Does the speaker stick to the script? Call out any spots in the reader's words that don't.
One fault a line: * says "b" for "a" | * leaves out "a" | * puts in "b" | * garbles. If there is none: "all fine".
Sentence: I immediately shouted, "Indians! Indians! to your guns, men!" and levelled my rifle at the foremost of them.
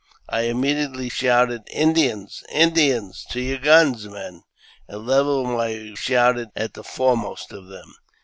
* says "shouted" for "rifle"